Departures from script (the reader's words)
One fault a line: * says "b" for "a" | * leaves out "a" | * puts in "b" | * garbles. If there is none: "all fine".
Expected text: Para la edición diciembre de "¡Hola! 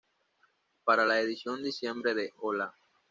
all fine